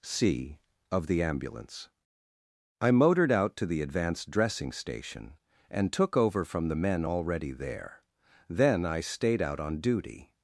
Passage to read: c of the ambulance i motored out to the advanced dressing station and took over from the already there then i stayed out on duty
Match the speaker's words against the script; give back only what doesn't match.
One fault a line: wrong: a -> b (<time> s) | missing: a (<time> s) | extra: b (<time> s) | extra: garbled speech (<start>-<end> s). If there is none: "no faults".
extra: men (6.8 s)